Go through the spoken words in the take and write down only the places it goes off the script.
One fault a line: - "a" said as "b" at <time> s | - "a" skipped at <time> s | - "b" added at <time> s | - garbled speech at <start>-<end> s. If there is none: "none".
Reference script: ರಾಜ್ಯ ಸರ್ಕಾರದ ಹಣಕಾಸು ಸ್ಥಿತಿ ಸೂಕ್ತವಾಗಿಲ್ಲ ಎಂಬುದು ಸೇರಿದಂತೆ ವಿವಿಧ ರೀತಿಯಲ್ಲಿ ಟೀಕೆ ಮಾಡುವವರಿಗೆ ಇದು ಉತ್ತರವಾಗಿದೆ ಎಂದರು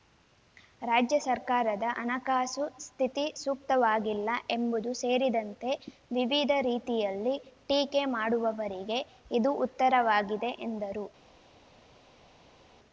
none